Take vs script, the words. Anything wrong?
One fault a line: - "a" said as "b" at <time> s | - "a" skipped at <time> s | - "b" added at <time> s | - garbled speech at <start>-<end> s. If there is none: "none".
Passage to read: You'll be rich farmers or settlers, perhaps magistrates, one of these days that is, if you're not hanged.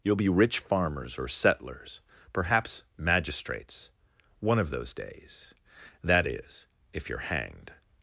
- "these" said as "those" at 4.7 s
- "not" skipped at 7.2 s